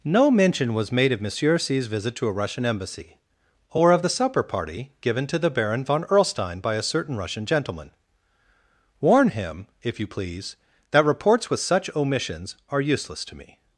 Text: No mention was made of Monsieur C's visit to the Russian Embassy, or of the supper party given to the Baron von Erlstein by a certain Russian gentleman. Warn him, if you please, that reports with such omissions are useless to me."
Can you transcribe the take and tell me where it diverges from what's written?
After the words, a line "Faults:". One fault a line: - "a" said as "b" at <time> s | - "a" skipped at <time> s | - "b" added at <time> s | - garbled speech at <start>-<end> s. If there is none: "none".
No mention was made of Monsieur C's visit to a Russian Embassy, or of the supper party given to the Baron von Erlstein by a certain Russian gentleman. Warn him, if you please, that reports with such omissions are useless to me."
Faults:
- "the" said as "a" at 2.3 s